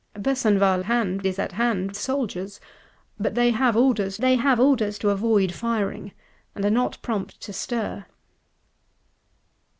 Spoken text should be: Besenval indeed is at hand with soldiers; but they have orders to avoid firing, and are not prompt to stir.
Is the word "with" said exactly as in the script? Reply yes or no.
no